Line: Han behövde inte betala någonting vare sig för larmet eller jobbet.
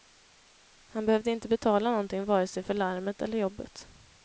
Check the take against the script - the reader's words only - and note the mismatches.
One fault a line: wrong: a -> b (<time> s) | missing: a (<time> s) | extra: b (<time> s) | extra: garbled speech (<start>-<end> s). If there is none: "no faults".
no faults